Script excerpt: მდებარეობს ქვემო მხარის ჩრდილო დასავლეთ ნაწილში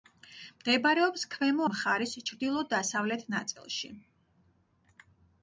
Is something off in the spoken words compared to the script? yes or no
no